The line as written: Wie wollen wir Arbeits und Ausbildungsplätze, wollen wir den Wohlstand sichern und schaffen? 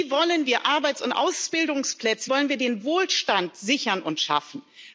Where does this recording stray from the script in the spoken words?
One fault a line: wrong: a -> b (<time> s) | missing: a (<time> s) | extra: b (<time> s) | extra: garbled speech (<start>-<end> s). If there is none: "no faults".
no faults